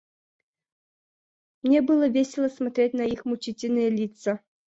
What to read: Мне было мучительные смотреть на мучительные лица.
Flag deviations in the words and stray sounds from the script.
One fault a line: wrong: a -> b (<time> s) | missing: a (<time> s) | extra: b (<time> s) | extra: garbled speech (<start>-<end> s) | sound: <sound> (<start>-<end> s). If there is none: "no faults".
wrong: мучительные -> весело (2.1 s)
extra: их (3.0 s)